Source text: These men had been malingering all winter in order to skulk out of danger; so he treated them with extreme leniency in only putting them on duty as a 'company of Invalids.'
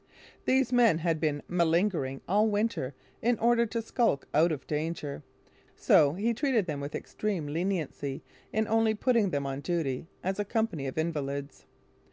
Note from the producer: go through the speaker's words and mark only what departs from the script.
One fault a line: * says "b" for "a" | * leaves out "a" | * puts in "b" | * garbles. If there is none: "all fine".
all fine